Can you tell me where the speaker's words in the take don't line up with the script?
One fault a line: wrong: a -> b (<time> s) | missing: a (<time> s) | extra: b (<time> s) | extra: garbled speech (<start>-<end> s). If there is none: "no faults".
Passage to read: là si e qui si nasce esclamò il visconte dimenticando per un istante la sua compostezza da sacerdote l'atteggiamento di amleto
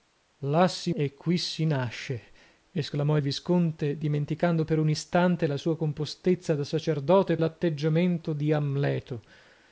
no faults